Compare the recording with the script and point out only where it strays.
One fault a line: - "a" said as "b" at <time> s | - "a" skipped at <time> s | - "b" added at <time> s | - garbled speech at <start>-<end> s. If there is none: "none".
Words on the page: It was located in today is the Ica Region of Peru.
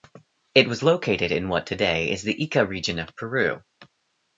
- "what" added at 1.5 s